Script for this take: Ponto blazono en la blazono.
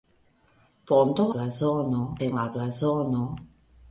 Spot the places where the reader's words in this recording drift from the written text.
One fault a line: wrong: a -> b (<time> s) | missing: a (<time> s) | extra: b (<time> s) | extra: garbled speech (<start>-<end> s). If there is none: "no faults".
no faults